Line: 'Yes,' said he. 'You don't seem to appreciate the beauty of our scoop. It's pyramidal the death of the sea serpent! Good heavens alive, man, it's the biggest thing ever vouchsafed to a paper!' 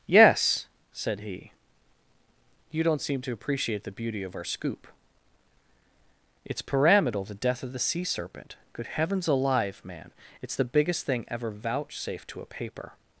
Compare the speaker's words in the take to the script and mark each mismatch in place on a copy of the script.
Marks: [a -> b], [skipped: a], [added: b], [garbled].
'Yes,' said he. 'You don't seem to appreciate the beauty of our scoop. It's pyramidal the death of the sea serpent! Good heavens alive, man, it's the biggest thing ever vouchsafed to a paper!'